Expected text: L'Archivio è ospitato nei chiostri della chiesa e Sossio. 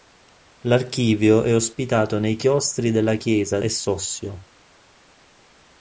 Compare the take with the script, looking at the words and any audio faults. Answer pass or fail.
pass